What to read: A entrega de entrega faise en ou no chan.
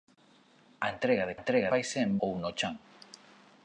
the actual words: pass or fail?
pass